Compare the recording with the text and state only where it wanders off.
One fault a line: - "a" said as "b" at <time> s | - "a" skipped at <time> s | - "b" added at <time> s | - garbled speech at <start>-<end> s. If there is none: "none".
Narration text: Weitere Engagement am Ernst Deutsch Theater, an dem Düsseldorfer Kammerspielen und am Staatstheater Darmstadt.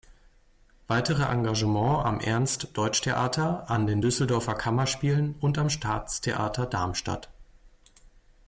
- "dem" said as "den" at 3.9 s